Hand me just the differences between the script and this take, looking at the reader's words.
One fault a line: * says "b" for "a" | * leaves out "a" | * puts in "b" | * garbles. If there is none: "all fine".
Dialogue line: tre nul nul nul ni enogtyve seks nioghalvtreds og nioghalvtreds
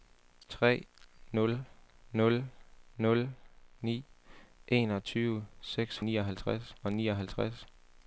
all fine